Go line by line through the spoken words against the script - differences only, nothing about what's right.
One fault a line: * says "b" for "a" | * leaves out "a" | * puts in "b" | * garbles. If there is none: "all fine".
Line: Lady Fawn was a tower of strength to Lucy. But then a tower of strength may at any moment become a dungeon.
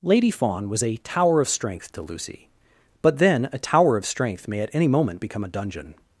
all fine